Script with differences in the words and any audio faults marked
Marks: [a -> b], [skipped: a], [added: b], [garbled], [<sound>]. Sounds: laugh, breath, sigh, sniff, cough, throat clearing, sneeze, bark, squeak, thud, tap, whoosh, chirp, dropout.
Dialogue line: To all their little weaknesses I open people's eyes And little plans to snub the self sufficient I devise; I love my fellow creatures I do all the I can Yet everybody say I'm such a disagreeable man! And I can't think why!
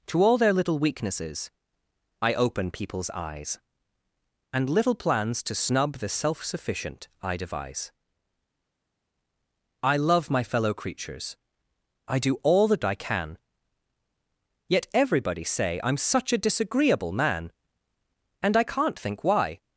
To all their little weaknesses I open people's eyes And little plans to snub the self sufficient I devise; I love my fellow creatures I do all the I can Yet everybody say I'm such a disagreeable man! And I can't think why!